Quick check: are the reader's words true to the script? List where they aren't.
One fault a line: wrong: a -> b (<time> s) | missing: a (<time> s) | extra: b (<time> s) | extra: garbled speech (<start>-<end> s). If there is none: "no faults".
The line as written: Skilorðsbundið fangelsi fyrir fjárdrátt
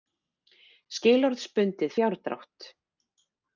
missing: fangelsi fyrir (1.9 s)